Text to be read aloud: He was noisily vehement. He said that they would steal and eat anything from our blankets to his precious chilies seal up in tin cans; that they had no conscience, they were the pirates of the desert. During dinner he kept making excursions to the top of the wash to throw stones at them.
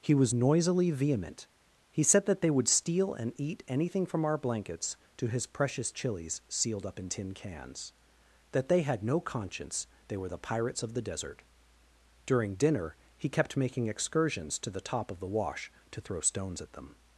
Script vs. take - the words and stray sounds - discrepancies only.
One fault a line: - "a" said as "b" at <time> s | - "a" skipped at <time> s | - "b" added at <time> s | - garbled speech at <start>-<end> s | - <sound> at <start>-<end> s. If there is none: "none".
- "seal" said as "sealed" at 6.5 s